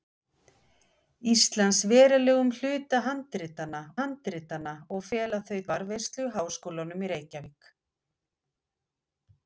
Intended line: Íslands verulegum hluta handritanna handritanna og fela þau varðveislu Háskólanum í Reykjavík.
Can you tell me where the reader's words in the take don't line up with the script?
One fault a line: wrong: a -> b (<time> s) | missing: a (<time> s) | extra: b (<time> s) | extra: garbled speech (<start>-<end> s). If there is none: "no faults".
no faults